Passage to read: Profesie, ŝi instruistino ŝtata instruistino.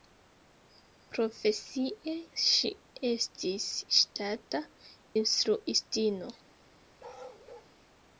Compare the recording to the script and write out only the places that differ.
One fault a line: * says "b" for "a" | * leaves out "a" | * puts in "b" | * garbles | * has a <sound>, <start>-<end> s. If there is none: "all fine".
* says "estis" for "instruistino"
* has a bark, 7.0-7.7 s